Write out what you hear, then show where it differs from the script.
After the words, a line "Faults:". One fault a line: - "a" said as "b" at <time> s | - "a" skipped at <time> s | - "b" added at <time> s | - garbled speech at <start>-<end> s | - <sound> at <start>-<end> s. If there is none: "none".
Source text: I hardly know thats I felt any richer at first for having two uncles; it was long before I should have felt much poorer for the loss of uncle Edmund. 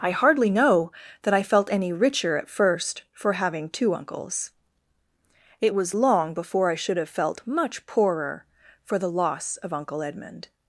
I hardly know that I felt any richer at first for having two uncles; it was long before I should have felt much poorer for the loss of uncle Edmund.
Faults:
- "thats" said as "that" at 1.2 s